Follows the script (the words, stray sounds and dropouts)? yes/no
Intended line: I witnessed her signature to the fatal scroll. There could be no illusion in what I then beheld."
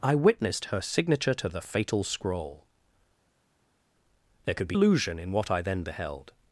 no